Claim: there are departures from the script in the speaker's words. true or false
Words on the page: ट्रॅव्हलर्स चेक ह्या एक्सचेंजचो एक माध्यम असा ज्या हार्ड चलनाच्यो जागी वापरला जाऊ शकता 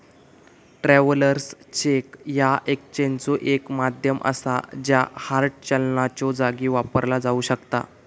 false